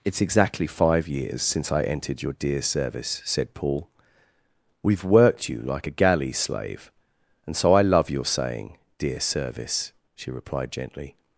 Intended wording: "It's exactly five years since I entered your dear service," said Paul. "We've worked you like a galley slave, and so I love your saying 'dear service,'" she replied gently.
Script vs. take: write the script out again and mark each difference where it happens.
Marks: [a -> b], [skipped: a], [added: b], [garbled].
"It's exactly five years since I entered your dear service," said Paul. "We've worked you like a galley slave, and so I love your saying 'dear service,'" she replied gently.